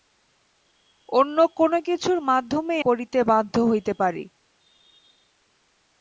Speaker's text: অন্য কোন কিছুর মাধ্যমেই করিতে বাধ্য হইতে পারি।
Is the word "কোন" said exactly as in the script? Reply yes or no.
yes